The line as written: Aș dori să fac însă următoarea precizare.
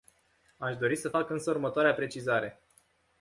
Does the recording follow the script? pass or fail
pass